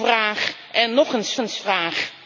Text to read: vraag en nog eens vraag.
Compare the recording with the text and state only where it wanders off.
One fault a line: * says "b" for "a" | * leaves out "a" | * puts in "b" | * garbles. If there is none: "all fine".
* puts in "eens"